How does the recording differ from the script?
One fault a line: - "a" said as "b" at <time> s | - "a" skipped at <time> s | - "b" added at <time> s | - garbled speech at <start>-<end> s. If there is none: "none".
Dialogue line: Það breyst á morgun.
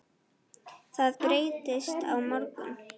none